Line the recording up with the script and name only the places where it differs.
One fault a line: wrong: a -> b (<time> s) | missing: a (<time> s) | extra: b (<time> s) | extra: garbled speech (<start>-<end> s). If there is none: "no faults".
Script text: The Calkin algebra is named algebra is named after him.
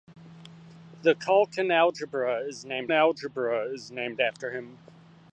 no faults